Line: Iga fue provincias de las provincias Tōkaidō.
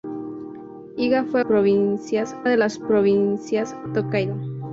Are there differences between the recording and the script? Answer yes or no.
no